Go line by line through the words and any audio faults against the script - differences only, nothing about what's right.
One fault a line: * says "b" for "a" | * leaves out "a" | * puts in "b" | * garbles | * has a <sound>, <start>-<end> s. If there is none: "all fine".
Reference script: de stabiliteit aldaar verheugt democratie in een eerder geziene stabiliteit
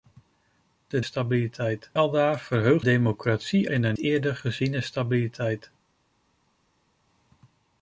all fine